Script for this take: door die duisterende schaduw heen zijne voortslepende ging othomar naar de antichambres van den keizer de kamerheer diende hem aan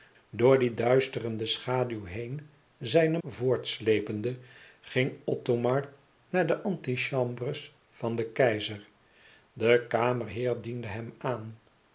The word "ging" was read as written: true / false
true